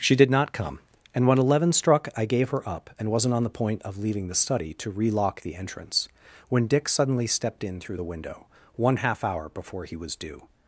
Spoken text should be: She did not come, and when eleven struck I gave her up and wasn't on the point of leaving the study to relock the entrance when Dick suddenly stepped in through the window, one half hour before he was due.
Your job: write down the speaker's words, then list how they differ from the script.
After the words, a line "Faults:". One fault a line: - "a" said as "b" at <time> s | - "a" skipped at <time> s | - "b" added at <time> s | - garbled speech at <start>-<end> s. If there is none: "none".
She did not come, and when eleven struck I gave her up and wasn't on the point of leaving the study to relock the entrance when Dick suddenly stepped in through the window, one half hour before he was due.
Faults:
none